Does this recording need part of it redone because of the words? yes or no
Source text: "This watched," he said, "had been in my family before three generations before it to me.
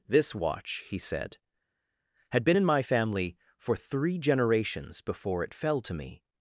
yes